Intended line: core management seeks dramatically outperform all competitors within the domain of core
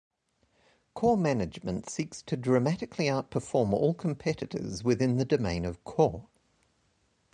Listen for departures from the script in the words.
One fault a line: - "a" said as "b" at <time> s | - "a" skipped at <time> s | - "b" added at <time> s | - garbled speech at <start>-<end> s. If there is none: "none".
- "to" added at 2.2 s